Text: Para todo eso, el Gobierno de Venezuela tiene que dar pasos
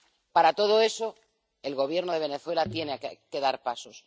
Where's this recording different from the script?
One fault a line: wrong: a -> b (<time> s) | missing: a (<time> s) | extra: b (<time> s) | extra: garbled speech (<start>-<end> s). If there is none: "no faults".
no faults